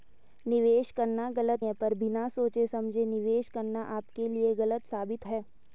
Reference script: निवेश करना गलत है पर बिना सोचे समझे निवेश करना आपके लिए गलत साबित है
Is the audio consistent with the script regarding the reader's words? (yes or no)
yes